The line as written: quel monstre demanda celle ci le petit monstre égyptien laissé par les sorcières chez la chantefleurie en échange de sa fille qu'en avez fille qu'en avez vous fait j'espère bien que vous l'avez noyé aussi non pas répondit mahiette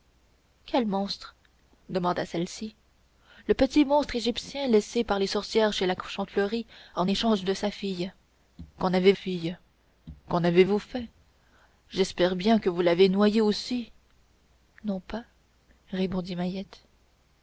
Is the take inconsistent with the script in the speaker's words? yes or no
no